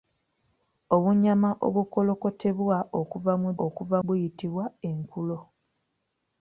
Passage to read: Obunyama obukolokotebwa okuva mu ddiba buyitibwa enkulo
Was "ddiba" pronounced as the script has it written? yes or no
no